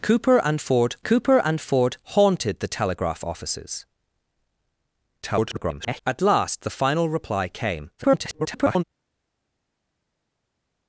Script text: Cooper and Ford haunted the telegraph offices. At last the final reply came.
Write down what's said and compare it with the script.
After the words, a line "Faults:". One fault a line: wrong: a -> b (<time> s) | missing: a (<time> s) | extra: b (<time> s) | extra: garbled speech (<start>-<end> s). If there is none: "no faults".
Cooper and Ford cooper and Ford haunted the telegraph offices. [garbled] At last the final reply came. [garbled]
Faults:
extra: cooper and Ford (1.0 s)
extra: garbled speech (5.2-6.0 s)
extra: garbled speech (8.0-8.8 s)